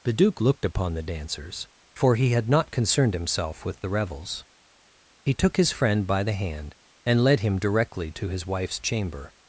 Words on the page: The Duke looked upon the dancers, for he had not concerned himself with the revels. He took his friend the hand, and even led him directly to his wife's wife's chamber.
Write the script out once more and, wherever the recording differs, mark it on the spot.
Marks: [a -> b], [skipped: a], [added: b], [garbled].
The Duke looked upon the dancers, for he had not concerned himself with the revels. He took his friend [added: by] the hand, and [skipped: even] led him directly to his wife's [skipped: wife's] chamber.